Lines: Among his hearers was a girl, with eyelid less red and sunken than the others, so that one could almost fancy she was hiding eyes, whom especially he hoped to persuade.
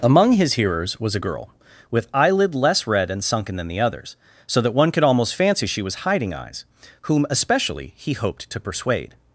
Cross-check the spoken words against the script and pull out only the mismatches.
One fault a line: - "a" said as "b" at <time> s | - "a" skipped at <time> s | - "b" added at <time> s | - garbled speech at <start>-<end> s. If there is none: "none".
none